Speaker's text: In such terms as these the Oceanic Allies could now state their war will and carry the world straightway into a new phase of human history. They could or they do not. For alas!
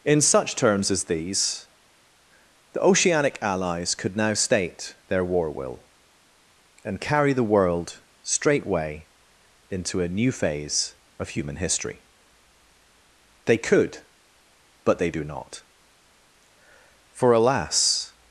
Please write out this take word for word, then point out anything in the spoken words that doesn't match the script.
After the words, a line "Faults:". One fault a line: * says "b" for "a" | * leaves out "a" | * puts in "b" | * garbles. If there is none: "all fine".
In such terms as these the Oceanic Allies could now state their war will and carry the world straightway into a new phase of human history. They could but they do not. For alas!
Faults:
* says "but" for "or"